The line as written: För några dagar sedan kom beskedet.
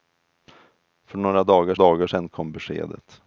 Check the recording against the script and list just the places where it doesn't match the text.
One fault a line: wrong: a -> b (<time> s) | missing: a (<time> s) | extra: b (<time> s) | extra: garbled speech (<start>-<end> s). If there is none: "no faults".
extra: dagar (1.7 s)